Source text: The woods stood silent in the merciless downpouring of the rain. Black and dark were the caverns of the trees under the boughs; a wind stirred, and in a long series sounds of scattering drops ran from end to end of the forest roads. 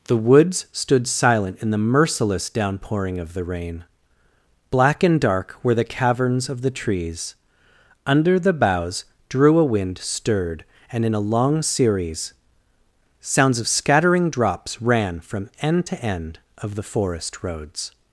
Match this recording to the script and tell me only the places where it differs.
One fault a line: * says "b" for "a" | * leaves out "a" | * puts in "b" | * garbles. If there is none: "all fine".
* puts in "drew"